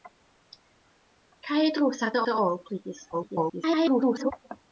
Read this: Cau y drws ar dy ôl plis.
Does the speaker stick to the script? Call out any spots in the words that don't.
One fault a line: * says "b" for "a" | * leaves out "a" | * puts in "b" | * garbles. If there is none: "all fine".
* puts in "dy"
* garbles